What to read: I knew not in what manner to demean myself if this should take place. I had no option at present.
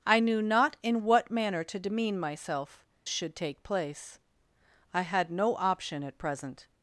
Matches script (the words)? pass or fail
fail